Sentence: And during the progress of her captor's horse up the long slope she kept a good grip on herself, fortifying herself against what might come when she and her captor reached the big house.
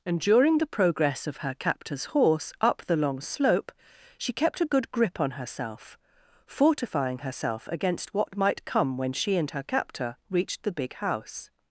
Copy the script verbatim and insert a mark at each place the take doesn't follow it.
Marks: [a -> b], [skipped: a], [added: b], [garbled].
And during the progress of her captor's horse up the long slope she kept a good grip on herself, fortifying herself against what might come when she and her captor reached the big house.